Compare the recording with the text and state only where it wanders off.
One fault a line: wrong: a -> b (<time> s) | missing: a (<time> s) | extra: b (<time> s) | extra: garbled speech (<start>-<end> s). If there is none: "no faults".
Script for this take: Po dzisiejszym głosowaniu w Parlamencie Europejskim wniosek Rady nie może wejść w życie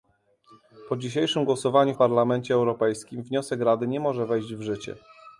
no faults